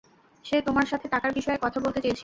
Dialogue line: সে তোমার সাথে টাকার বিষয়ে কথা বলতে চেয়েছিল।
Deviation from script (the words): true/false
false